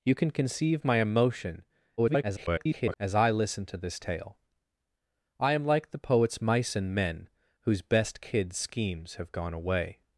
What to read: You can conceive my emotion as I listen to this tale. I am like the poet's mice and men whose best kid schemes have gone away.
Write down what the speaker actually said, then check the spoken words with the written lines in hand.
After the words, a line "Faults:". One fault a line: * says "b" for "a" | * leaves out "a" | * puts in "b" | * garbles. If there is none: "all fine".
You can conceive my emotion [garbled] as I listen to this tale. I am like the poet's mice and men whose best kid schemes have gone away.
Faults:
* garbles